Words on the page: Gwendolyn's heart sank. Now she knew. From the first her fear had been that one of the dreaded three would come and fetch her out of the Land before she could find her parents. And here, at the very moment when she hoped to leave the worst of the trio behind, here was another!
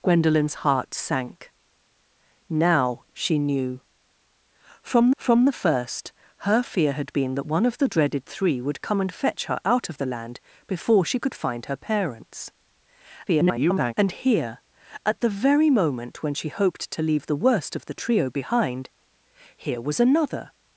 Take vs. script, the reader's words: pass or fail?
fail